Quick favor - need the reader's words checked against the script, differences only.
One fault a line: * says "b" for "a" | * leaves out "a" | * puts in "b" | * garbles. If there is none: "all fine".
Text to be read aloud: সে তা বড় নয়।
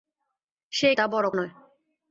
all fine